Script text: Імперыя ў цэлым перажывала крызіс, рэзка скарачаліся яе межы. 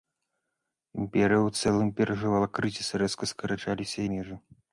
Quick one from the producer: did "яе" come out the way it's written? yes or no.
no